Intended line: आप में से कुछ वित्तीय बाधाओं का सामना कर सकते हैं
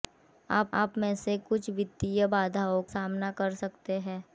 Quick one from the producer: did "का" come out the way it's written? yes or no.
no